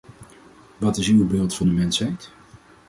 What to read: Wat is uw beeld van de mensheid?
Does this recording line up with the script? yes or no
yes